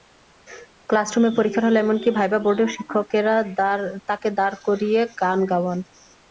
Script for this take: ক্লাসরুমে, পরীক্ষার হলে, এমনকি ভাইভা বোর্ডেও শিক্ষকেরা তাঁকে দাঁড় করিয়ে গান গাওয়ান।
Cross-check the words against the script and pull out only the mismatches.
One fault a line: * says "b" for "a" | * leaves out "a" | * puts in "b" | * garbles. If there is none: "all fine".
all fine